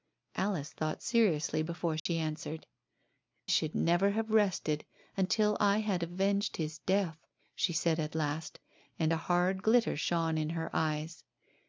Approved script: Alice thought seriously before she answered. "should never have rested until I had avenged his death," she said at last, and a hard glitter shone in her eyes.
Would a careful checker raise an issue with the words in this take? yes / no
no